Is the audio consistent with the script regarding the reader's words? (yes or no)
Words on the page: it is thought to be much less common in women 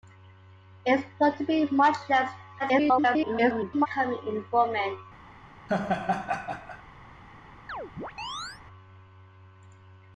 no